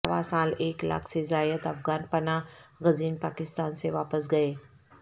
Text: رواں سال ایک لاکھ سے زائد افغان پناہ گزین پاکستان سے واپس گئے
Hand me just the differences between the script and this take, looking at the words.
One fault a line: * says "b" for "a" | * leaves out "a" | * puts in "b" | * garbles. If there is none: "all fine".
all fine